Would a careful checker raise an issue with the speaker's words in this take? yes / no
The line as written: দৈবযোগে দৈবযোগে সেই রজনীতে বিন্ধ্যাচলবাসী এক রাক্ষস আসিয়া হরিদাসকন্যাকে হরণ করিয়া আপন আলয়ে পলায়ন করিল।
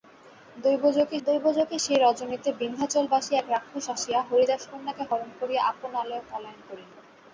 no